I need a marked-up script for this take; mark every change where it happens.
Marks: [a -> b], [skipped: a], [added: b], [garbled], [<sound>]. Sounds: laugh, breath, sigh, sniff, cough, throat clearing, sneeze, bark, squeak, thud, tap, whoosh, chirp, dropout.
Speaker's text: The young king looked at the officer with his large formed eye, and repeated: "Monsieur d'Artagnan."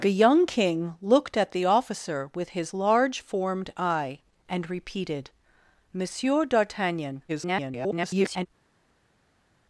The young king looked at the officer with his large formed eye, and repeated: "Monsieur d'Artagnan." [garbled]